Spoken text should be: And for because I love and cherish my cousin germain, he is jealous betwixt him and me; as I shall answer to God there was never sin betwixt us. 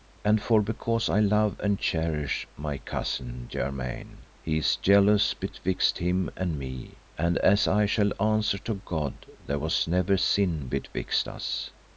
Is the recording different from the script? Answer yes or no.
yes